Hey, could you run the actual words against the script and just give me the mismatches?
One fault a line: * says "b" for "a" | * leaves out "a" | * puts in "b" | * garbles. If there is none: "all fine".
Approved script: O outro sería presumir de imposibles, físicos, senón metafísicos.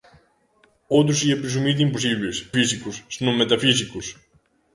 all fine